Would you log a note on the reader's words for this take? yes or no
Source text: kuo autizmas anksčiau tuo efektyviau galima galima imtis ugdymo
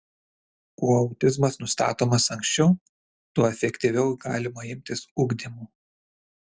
yes